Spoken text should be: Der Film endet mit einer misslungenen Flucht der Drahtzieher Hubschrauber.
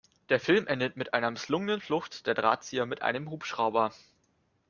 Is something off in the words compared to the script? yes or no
yes